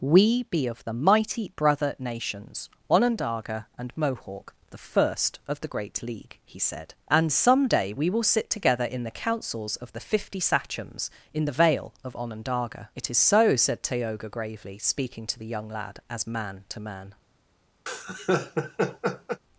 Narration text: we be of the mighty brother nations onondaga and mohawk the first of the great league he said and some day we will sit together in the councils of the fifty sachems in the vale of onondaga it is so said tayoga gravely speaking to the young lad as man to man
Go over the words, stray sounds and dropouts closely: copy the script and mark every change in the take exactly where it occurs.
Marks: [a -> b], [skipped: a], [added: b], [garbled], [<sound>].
we be of the mighty brother nations onondaga and mohawk the first of the great league he said and some day we will sit together in the councils of the fifty sachems in the vale of onondaga it is so said tayoga gravely speaking to the young lad as man to man [laugh]